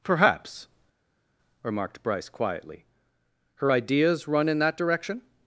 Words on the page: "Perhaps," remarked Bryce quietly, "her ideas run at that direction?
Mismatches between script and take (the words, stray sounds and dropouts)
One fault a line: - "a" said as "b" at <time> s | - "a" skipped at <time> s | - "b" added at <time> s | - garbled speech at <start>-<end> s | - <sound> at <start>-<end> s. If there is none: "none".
- "at" said as "in" at 4.5 s